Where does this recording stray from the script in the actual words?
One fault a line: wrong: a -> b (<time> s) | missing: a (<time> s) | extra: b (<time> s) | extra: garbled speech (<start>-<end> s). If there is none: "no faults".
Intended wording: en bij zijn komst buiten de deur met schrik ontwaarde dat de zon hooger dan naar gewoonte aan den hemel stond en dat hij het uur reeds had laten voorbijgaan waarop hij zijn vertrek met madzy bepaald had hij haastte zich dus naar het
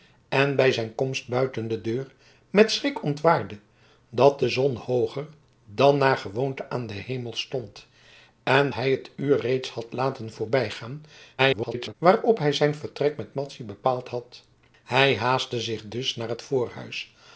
missing: dat (8.7 s)
extra: garbled speech (11.4-11.9 s)